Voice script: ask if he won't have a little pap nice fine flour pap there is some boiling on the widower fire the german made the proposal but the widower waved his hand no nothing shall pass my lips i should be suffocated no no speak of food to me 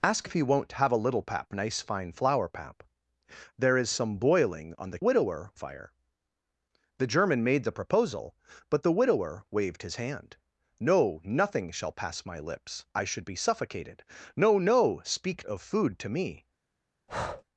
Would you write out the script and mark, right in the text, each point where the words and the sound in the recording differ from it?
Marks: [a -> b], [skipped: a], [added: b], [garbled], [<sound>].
ask if he won't have a little pap nice fine flour pap there is some boiling on the widower fire the german made the proposal but the widower waved his hand no nothing shall pass my lips i should be suffocated no no speak of food to me [breath]